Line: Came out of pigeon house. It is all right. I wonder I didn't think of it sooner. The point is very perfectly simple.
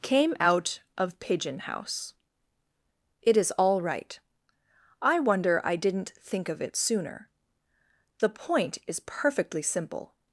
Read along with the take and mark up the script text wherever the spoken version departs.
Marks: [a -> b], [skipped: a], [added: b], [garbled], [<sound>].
Came out of pigeon house. It is all right. I wonder I didn't think of it sooner. The point is [skipped: very] perfectly simple.